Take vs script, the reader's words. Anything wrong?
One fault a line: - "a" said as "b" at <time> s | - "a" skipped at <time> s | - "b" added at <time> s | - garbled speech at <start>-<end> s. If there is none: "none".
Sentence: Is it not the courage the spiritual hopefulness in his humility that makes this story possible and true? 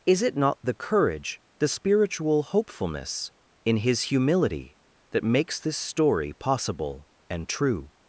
none